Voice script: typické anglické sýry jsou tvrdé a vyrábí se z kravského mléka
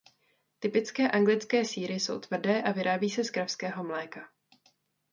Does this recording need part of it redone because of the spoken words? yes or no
no